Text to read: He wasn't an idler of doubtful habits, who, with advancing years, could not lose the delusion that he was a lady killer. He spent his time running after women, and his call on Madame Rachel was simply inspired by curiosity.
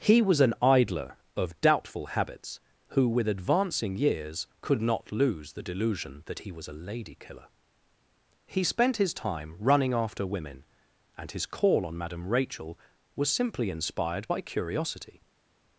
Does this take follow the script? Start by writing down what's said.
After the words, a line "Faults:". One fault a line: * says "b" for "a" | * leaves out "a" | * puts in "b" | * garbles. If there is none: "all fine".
He was an idler of doubtful habits, who, with advancing years, could not lose the delusion that he was a lady killer. He spent his time running after women, and his call on Madame Rachel was simply inspired by curiosity.
Faults:
* says "was" for "wasn't"